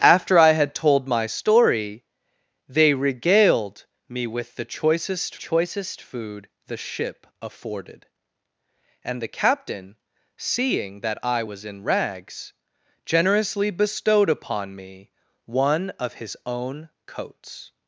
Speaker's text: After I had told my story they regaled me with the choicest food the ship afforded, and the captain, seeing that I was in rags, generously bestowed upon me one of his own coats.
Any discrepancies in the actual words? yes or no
yes